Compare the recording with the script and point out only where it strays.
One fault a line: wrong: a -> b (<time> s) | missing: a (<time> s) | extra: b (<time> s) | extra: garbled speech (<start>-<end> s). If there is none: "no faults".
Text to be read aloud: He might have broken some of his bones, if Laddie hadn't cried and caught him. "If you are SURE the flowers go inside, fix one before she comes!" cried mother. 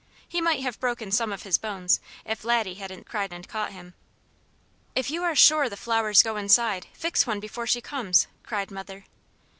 no faults